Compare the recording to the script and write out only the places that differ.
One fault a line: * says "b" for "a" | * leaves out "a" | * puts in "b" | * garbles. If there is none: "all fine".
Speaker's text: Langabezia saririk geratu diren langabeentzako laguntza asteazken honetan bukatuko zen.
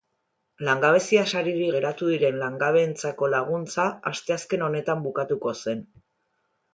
all fine